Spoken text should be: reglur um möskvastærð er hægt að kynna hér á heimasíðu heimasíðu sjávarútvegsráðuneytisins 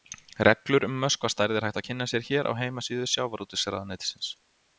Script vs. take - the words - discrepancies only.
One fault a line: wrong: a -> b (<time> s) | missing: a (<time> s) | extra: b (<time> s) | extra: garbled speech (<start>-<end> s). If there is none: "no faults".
extra: sér (2.1 s)
missing: heimasíðu (3.1 s)